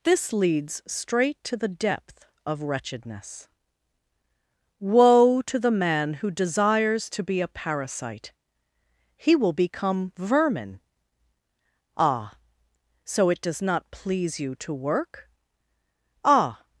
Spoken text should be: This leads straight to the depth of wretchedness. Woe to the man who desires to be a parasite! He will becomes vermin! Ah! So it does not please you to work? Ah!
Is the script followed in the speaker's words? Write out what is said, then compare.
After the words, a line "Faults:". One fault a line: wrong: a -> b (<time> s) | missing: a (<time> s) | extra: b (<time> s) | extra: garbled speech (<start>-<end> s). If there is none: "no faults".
This leads straight to the depth of wretchedness. Woe to the man who desires to be a parasite! He will become vermin! Ah! So it does not please you to work? Ah!
Faults:
wrong: becomes -> become (9.5 s)